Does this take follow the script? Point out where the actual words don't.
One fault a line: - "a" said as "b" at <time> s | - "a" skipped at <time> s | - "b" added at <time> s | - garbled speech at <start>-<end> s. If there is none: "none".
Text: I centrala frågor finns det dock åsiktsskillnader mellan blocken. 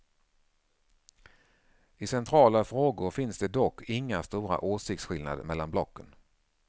- "inga stora" added at 3.9 s